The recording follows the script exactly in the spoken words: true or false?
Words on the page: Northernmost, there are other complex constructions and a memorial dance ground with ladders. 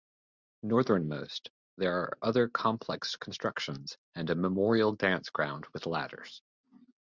true